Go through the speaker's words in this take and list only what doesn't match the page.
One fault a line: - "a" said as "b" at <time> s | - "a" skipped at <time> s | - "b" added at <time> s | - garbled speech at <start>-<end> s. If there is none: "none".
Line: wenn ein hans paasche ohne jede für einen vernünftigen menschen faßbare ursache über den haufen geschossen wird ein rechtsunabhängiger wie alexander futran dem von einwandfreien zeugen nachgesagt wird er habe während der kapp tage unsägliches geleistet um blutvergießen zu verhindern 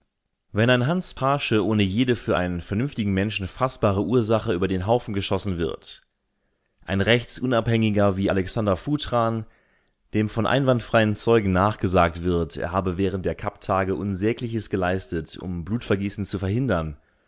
none